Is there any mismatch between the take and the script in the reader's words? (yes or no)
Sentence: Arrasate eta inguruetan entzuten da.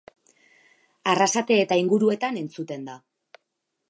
no